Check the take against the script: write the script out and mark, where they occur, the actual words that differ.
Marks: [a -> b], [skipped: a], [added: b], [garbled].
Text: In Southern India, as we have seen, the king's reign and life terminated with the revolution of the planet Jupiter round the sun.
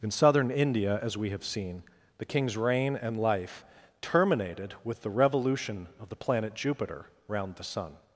In Southern India, as we have seen, the king's reign and life terminated with the revolution of the planet Jupiter round the sun.